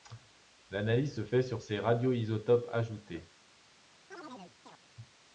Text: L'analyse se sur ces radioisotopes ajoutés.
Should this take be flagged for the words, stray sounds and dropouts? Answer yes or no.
yes